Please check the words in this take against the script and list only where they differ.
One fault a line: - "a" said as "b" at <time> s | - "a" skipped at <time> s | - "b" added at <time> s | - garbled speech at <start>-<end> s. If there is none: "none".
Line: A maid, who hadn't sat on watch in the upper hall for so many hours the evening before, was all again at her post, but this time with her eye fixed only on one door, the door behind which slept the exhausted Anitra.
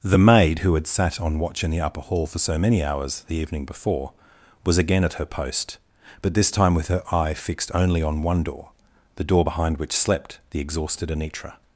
- "A" said as "The" at 0.0 s
- "hadn't" said as "had" at 0.7 s
- "all" skipped at 4.8 s